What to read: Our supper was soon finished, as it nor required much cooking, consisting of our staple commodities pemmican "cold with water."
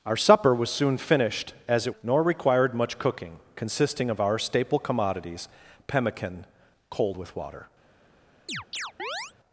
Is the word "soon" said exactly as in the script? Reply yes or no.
yes